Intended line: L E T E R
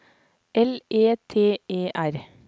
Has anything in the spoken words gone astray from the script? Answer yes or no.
no